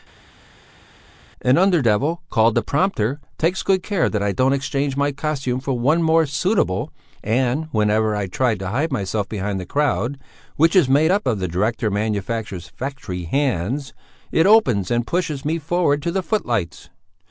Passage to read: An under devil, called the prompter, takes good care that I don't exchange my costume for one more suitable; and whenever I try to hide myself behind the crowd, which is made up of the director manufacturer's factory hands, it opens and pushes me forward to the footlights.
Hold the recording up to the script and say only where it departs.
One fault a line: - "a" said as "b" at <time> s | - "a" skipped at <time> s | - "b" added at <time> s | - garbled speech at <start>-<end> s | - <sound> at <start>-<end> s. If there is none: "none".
none